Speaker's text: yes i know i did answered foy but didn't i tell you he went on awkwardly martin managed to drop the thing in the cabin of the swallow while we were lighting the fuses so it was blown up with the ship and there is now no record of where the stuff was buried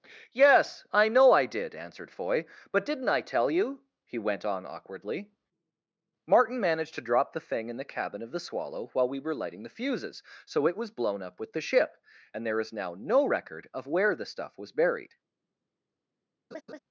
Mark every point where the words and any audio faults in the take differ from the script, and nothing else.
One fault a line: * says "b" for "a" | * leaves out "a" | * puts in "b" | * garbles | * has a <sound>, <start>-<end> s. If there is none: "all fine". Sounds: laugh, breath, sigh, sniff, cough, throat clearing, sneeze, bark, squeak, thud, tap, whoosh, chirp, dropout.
* has a laugh, 16.5-16.8 s